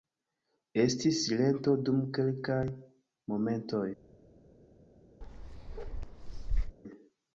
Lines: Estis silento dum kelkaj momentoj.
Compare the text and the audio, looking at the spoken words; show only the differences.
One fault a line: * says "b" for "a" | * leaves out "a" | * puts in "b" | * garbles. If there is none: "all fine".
all fine